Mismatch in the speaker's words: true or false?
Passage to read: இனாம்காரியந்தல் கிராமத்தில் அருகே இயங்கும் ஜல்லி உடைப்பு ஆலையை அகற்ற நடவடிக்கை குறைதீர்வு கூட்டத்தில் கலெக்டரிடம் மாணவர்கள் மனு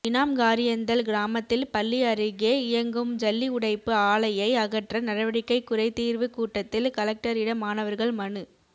true